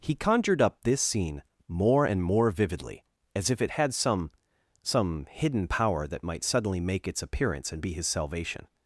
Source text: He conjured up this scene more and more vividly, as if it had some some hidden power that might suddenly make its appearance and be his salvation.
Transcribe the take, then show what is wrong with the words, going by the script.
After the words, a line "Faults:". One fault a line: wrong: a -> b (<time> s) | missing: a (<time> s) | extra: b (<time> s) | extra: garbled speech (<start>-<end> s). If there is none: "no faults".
He conjured up this scene more and more vividly, as if it had some some hidden power that might suddenly make its appearance and be his salvation.
Faults:
no faults